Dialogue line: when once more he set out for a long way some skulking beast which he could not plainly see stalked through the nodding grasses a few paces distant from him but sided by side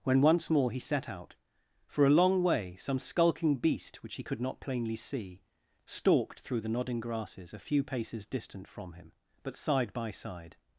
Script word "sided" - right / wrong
wrong